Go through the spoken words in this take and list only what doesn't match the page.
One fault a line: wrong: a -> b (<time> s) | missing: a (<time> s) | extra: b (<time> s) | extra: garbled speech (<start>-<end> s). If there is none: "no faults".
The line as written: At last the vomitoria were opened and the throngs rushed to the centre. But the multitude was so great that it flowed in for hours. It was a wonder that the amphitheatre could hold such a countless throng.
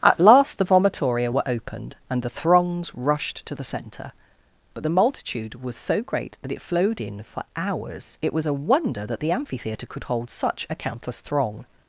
no faults